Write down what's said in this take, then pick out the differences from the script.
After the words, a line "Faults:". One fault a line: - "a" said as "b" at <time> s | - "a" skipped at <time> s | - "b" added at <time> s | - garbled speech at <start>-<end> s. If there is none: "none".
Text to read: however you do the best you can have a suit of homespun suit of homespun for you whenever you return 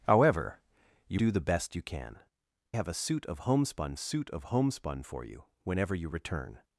however you do the best you can have a suit of homespun suit of homespun for you whenever you return
Faults:
none